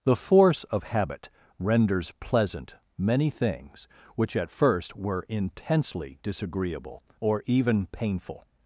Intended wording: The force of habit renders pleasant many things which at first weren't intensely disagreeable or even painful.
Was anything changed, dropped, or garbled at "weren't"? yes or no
yes